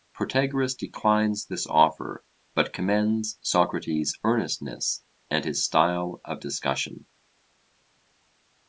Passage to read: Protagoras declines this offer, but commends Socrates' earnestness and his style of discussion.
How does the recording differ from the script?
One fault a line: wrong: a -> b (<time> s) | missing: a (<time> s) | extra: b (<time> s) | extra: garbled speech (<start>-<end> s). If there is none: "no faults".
no faults